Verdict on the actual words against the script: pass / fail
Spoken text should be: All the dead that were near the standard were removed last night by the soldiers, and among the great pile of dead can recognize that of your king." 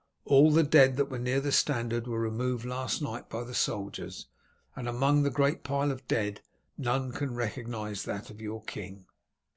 fail